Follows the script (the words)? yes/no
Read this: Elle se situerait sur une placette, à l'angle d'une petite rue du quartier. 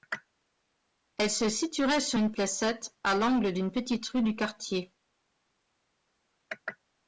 yes